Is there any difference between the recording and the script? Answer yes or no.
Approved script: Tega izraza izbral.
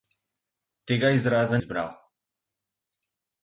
no